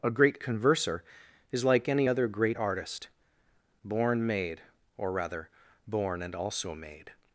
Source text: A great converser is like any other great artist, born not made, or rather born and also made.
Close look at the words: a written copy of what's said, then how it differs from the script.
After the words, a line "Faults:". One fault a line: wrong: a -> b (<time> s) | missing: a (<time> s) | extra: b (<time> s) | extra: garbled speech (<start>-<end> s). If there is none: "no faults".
A great converser is like any other great artist, born made, or rather born and also made.
Faults:
missing: not (4.3 s)